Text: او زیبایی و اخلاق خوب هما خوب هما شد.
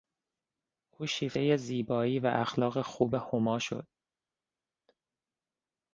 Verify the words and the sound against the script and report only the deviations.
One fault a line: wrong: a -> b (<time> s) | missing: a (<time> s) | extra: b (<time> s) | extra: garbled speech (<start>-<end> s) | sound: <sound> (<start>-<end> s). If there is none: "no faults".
extra: شیفتهی (1.1 s)
missing: خوب هما (3.6 s)